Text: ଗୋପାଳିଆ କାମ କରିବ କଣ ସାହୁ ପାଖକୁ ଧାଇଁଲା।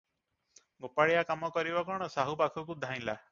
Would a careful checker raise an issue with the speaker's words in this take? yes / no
no